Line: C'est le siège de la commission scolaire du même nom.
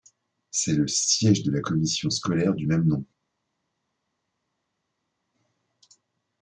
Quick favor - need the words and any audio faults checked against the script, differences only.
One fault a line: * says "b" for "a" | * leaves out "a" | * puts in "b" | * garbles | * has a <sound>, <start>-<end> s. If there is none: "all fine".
all fine